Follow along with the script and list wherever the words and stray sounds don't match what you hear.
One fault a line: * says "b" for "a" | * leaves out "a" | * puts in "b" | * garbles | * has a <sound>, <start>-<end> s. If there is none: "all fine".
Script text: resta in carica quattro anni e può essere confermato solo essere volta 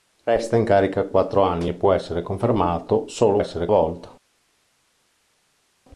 all fine